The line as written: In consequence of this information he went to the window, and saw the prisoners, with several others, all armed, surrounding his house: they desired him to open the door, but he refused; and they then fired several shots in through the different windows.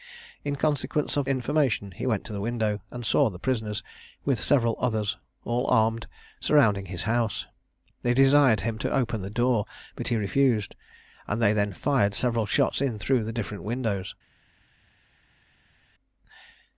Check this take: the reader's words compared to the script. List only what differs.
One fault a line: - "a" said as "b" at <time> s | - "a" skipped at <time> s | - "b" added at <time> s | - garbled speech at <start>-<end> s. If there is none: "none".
- "this" skipped at 1.3 s